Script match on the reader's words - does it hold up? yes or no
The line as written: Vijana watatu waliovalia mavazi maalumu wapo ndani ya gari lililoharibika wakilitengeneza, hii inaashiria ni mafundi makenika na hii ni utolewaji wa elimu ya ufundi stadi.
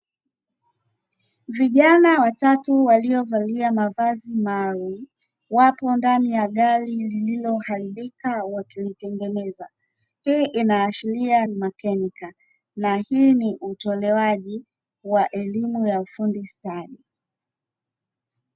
no